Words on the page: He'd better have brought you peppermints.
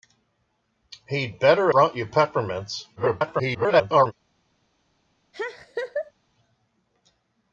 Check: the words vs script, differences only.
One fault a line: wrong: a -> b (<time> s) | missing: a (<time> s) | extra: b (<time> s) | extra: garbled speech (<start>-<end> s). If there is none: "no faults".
missing: have (1.7 s)
extra: garbled speech (3.0-4.1 s)